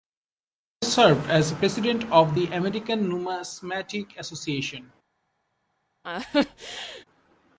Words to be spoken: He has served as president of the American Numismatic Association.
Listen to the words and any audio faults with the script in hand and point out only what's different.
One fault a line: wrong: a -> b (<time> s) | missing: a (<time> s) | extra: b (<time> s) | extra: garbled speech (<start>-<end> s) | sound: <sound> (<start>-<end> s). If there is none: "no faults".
sound: laugh (6.0-7.0 s)